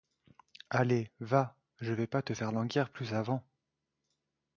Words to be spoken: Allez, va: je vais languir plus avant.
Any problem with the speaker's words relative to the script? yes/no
yes